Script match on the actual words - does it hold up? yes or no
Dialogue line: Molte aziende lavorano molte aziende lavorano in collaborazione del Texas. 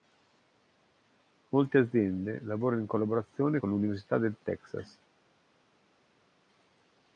no